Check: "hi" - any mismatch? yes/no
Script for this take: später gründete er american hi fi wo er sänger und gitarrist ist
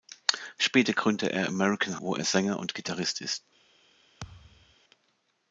yes